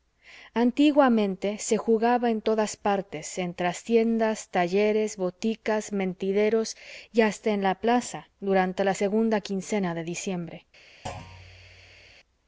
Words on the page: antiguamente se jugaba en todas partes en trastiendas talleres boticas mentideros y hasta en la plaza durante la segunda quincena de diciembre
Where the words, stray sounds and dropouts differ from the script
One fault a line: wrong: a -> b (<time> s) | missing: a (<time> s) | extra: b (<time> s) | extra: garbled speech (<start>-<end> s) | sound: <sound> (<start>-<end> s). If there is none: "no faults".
sound: thud (11.1-12.2 s)